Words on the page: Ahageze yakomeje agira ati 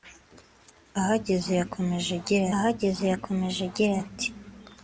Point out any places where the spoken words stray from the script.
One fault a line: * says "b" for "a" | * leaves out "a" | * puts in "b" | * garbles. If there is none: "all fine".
* puts in "ahageze yakomeje agira"